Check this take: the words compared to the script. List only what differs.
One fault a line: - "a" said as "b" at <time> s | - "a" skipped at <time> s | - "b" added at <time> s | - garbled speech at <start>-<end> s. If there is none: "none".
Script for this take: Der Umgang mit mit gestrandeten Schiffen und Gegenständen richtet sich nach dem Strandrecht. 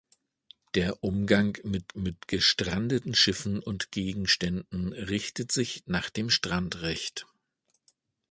none